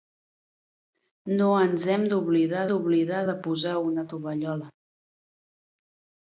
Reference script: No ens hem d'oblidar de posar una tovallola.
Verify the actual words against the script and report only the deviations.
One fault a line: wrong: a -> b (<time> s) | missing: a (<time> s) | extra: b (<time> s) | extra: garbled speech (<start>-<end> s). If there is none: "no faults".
extra: d'oblidar (2.7 s)